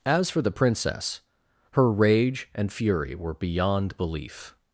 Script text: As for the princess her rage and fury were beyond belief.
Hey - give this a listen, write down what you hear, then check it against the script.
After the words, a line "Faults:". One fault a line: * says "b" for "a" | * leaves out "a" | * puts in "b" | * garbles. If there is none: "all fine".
As for the princess her rage and fury were beyond belief.
Faults:
all fine